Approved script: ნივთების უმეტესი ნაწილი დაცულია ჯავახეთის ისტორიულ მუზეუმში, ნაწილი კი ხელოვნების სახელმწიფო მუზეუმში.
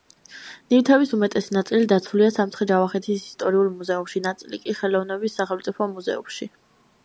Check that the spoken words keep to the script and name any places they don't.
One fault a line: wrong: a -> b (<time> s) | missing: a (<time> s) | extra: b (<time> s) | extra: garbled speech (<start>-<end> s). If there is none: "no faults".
extra: სამცხე (2.4 s)